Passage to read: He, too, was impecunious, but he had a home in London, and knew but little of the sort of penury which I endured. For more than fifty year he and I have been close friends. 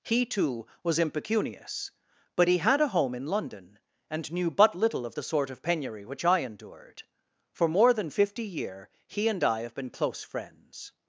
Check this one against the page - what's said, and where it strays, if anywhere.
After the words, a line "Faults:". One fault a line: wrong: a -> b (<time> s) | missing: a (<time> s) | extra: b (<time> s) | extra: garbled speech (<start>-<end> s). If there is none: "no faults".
He, too, was impecunious, but he had a home in London, and knew but little of the sort of penury which I endured. For more than fifty year he and I have been close friends.
Faults:
no faults